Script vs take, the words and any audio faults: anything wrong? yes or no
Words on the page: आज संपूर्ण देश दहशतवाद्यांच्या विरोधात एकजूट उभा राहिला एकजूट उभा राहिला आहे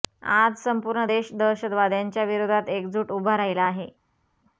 yes